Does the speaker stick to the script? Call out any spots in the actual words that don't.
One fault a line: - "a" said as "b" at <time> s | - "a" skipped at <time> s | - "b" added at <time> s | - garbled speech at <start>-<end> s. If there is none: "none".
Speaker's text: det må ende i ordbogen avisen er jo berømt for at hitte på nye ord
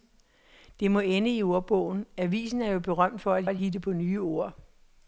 - "at" added at 3.5 s